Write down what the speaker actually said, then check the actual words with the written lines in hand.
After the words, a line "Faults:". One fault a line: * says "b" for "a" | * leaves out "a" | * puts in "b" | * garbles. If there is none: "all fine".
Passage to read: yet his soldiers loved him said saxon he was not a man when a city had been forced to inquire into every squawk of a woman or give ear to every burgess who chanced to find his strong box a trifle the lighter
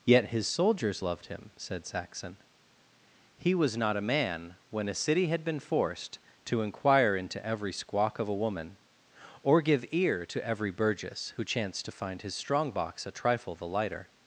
yet his soldiers loved him said saxon he was not a man when a city had been forced to inquire into every squawk of a woman or give ear to every burgess who chanced to find his strong box a trifle the lighter
Faults:
all fine